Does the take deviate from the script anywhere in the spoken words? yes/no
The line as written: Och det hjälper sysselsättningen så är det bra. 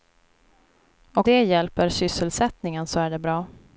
no